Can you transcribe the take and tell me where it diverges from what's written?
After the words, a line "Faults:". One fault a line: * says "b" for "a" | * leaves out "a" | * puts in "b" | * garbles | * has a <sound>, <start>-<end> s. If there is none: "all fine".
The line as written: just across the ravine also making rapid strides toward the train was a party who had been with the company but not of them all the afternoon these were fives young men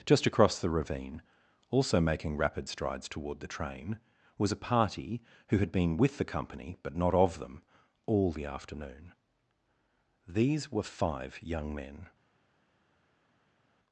just across the ravine also making rapid strides toward the train was a party who had been with the company but not of them all the afternoon these were five young men
Faults:
* says "five" for "fives"